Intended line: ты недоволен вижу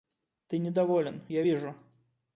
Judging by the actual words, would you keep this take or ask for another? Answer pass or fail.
fail